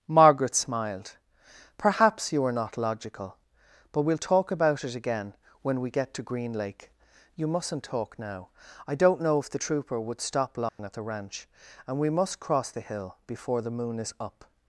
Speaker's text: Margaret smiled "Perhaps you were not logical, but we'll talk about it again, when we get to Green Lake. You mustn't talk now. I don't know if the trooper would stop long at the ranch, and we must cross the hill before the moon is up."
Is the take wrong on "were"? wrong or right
wrong